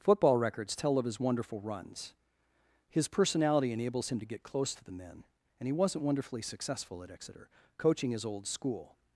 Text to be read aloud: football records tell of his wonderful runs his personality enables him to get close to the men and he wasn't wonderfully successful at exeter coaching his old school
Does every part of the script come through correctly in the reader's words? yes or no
yes